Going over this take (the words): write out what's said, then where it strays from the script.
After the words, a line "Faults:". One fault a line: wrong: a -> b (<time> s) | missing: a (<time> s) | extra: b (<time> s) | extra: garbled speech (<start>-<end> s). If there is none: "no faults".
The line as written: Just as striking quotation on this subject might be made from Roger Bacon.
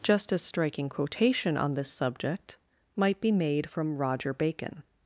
Just as striking quotation on this subject might be made from Roger Bacon.
Faults:
no faults